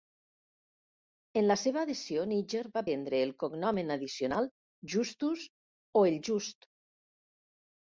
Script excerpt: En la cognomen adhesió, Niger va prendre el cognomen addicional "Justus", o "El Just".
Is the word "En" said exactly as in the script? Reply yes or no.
yes